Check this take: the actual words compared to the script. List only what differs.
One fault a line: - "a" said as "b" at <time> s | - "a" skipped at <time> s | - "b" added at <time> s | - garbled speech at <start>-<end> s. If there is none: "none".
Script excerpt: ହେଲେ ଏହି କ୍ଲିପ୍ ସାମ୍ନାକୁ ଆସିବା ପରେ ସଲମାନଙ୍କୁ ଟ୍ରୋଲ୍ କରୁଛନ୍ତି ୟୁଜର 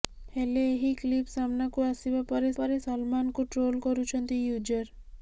- "ପରେ" added at 2.6 s